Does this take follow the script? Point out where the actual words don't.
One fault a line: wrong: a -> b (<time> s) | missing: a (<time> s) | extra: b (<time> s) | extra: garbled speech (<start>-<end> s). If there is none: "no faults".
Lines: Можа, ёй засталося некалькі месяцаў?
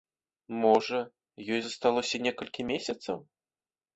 no faults